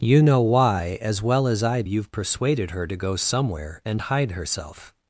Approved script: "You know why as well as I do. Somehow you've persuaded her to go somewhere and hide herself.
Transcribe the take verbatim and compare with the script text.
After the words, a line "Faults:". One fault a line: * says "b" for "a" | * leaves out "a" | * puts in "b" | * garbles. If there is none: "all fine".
"You know why as well as I you've persuaded her to go somewhere and hide herself.
Faults:
* leaves out "do Somehow"